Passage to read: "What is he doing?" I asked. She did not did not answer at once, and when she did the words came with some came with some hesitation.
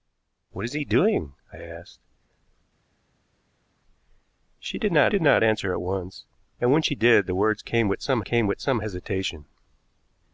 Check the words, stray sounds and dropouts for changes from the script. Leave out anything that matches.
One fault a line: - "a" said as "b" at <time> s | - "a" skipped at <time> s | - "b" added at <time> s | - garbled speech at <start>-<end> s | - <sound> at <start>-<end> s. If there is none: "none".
none